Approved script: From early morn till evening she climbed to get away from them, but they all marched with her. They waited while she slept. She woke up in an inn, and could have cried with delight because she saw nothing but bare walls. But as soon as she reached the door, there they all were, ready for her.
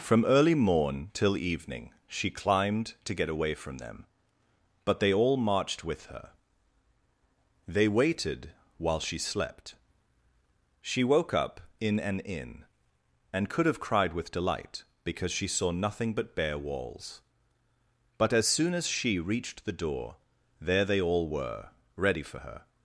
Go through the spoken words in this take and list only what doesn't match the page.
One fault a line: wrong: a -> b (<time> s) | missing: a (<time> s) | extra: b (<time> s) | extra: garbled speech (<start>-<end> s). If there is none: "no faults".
no faults